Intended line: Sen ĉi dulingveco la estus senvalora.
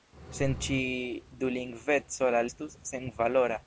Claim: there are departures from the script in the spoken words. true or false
false